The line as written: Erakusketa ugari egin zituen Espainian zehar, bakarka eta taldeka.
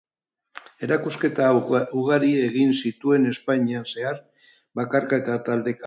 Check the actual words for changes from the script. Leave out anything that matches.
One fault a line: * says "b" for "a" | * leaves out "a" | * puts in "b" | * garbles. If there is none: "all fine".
all fine